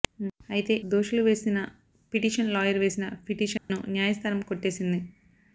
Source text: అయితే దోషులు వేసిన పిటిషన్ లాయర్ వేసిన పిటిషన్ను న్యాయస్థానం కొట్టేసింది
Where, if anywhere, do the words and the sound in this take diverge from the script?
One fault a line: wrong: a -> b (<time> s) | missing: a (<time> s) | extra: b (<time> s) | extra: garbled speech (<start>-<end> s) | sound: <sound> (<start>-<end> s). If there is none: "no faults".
sound: dropout (3.6-3.7 s)